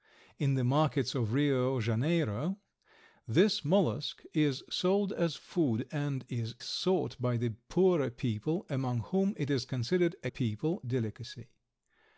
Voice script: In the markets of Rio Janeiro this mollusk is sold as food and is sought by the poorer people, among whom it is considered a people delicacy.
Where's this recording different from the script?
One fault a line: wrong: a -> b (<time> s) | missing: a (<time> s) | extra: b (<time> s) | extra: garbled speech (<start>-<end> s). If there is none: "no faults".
no faults